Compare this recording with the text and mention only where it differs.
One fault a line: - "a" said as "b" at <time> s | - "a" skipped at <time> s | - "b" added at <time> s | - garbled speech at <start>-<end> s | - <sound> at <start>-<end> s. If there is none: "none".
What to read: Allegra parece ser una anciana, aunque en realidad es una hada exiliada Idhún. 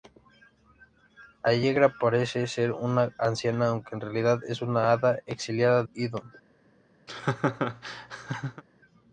- laugh at 7.1-8.6 s